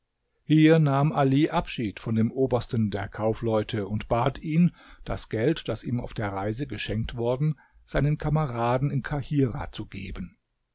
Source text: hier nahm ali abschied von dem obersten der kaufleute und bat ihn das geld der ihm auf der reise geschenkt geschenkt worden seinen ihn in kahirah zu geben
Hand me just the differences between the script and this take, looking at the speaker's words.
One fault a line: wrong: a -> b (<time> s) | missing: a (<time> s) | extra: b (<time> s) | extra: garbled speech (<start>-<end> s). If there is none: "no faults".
wrong: der -> das (5.7 s)
missing: geschenkt (7.2 s)
wrong: ihn -> kameraden (8.2 s)